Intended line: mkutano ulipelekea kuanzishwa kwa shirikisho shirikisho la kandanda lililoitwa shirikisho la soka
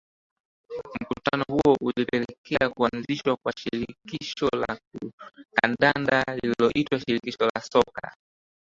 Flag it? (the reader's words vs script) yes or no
yes